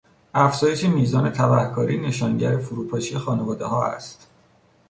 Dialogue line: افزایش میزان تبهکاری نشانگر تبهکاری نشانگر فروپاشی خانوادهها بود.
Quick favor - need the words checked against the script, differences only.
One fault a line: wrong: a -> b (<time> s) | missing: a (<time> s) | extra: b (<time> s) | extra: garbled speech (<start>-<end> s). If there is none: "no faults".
missing: تبهکاری نشانگر (2.6 s)
wrong: بود -> است (3.9 s)